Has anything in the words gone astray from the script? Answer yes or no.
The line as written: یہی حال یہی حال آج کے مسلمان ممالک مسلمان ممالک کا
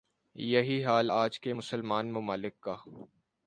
yes